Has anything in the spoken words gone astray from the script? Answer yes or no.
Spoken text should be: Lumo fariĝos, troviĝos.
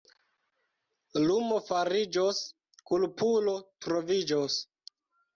yes